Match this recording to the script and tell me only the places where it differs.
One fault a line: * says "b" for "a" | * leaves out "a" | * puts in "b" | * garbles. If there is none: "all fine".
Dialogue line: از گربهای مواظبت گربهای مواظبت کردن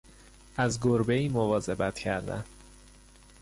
* leaves out "گربهای مواظبت"